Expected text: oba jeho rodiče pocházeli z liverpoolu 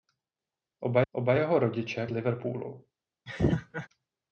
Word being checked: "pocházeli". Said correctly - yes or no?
no